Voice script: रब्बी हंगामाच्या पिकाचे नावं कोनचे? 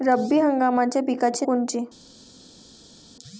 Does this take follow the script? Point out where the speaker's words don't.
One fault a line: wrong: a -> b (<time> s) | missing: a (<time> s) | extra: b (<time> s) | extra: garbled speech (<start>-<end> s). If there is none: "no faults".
missing: नावं (1.4 s)